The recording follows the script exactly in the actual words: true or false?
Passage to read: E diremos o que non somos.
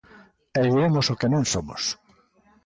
true